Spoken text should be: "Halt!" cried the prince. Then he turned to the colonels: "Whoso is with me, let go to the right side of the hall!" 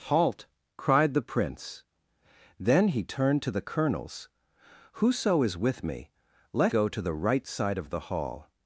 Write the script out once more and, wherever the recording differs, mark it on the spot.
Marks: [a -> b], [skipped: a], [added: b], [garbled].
"Halt!" cried the prince. Then he turned to the colonels: "Whoso is with me, let go to the right side of the hall!"